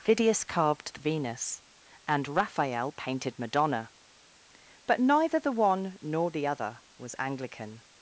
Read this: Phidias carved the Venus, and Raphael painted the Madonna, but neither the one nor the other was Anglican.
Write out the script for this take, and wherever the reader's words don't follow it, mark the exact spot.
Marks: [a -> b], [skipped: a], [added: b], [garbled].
Phidias carved the Venus, and Raphael painted [skipped: the] Madonna, but neither the one nor the other was Anglican.